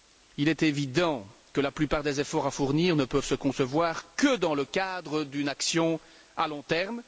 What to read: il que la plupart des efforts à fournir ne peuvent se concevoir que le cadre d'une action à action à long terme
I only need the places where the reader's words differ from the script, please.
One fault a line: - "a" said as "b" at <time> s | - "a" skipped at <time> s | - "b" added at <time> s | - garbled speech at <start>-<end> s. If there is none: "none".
- "est évident" added at 0.5 s
- "dans" added at 4.4 s
- "action à" skipped at 6.5 s